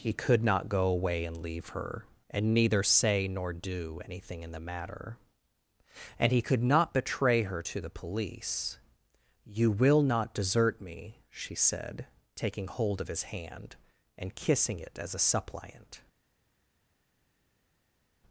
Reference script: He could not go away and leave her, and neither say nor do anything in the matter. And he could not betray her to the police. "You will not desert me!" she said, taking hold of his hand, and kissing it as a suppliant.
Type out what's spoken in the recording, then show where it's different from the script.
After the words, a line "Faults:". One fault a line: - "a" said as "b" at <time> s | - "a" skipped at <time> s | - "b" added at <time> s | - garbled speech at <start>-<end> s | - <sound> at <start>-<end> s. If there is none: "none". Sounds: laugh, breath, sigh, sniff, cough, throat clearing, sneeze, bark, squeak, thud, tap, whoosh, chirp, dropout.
He could not go away and leave her, and neither say nor do anything in the matter. And he could not betray her to the police. "You will not desert me!" she said, taking hold of his hand, and kissing it as a suppliant.
Faults:
none